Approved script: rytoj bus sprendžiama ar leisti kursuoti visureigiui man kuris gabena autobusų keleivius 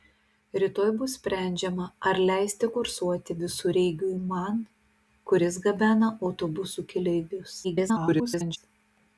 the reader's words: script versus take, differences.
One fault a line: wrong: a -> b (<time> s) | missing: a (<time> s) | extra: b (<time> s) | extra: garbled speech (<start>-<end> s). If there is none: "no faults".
extra: garbled speech (7.6-8.6 s)